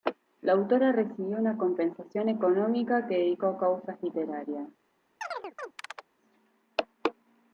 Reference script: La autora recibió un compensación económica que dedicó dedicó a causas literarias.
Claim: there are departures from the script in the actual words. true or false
true